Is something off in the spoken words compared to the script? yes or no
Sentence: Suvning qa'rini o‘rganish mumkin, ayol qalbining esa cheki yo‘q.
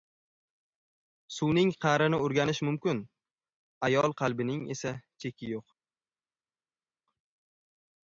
no